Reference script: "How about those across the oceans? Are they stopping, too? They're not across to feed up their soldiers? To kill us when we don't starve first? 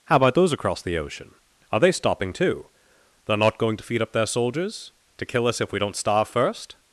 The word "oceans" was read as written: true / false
false